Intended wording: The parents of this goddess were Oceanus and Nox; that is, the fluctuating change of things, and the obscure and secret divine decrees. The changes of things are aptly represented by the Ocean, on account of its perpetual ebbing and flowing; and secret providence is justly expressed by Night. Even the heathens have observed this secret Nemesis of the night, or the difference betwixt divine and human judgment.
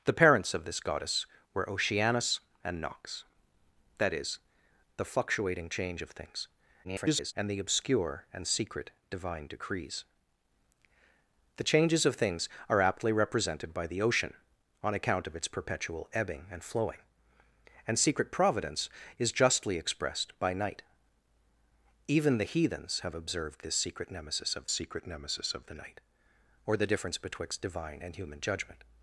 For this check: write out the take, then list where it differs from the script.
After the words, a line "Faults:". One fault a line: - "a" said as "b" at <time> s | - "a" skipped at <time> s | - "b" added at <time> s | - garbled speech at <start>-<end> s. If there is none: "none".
The parents of this goddess were Oceanus and Nox; that is, the fluctuating change of things, [garbled] and the obscure and secret divine decrees. The changes of things are aptly represented by the Ocean, on account of its perpetual ebbing and flowing; and secret providence is justly expressed by Night. Even the heathens have observed this secret Nemesis of secret Nemesis of the night, or the difference betwixt divine and human judgment.
Faults:
- garbled speech at 6.8-7.3 s
- "secret Nemesis of" added at 24.7 s